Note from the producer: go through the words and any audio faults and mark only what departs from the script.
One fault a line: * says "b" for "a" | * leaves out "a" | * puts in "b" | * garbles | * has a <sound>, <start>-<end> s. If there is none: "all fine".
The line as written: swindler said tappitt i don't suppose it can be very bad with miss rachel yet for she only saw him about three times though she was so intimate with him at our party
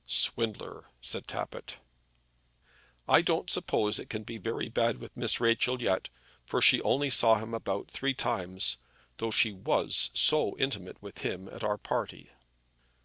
all fine